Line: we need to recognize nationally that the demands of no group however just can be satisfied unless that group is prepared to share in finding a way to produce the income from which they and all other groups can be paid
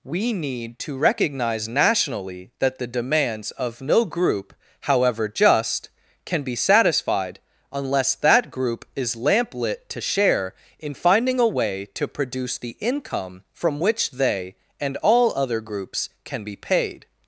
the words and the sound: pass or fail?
fail